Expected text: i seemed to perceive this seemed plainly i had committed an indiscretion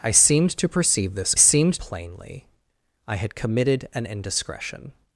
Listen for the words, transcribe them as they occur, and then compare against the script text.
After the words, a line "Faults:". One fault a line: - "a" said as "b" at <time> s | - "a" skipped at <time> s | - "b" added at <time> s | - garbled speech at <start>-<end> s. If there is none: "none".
i seemed to perceive this seemed plainly i had committed an indiscretion
Faults:
none